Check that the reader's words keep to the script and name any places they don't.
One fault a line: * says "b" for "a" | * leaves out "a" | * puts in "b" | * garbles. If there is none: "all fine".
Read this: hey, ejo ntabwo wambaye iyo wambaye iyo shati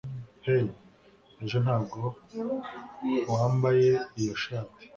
* leaves out "wambaye iyo"